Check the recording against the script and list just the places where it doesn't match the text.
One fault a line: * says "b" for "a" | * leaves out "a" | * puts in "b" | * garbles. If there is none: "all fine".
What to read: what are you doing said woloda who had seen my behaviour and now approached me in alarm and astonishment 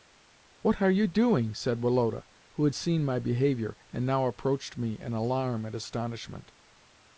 all fine